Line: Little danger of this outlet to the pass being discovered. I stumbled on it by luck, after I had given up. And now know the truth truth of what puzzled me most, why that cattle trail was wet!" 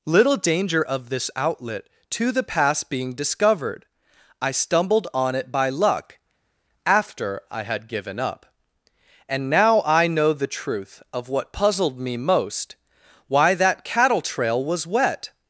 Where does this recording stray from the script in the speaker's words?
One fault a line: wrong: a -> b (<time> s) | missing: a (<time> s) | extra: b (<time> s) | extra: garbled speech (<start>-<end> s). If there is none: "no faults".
extra: I (9.8 s)
missing: truth (11.0 s)